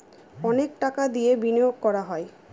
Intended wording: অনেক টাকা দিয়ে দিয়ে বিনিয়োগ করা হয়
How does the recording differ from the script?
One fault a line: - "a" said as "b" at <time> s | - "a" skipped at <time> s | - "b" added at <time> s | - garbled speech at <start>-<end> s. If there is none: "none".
- "দিয়ে" skipped at 1.3 s